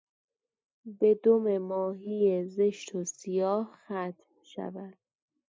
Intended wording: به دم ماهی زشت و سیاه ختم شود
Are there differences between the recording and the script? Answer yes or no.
no